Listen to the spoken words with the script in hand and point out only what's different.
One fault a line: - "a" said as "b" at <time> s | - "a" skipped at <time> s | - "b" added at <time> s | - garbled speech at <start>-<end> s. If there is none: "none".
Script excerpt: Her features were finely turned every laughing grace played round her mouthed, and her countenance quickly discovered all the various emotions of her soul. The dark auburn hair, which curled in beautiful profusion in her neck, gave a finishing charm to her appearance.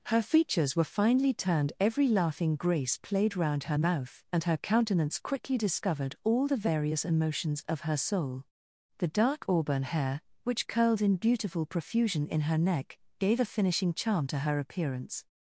- "mouthed" said as "mouth" at 3.7 s